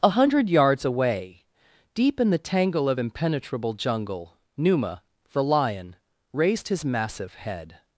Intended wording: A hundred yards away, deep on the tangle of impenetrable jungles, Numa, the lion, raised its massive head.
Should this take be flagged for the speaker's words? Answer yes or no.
yes